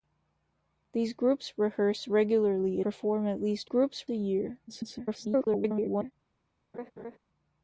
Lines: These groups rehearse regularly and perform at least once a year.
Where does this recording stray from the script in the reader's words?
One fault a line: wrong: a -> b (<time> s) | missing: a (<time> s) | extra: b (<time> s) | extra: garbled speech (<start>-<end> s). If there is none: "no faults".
missing: and (2.8 s)
wrong: once -> groups (3.6 s)
extra: garbled speech (4.7-6.1 s)